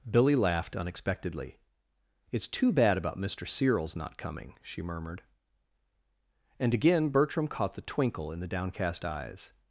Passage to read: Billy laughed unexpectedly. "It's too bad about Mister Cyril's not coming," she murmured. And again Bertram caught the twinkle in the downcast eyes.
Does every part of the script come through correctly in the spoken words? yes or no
yes